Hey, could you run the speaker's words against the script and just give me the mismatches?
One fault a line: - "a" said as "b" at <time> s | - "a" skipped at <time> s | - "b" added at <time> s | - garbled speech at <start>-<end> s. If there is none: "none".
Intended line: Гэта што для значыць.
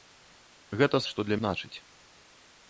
none